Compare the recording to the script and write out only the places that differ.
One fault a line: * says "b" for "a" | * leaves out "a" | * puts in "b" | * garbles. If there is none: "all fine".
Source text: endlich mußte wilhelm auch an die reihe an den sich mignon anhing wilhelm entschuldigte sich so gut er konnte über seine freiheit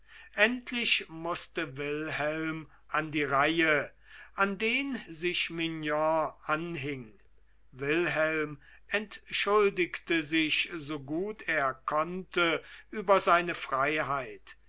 * leaves out "auch"